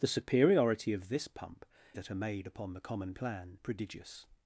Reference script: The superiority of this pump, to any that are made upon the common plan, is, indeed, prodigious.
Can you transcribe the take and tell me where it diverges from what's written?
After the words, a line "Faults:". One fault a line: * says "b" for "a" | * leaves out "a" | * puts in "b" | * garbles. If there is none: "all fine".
The superiority of this pump, that are made upon the common plan, prodigious.
Faults:
* leaves out "to any"
* leaves out "is indeed"